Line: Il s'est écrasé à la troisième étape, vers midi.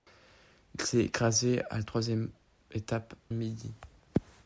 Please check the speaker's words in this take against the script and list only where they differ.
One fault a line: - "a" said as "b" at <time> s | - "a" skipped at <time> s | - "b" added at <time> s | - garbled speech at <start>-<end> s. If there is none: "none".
- "vers" skipped at 3.1 s